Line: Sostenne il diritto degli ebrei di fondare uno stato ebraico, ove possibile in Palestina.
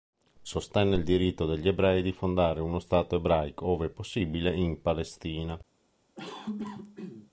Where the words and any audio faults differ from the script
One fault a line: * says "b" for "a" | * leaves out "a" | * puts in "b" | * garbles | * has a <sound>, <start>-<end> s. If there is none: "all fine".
* has a cough, 6.2-7.3 s